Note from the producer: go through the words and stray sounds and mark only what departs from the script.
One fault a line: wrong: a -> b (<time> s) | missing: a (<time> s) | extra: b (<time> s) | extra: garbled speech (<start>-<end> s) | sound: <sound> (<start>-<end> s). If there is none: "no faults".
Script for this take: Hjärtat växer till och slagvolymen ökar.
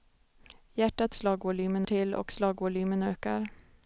wrong: växer -> slagvolymen (1.2 s)